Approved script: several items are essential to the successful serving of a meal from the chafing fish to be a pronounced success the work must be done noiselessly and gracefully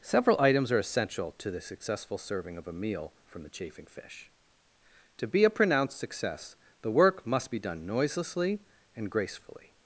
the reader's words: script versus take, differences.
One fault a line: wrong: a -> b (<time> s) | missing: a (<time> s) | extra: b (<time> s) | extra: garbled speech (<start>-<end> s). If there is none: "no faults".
no faults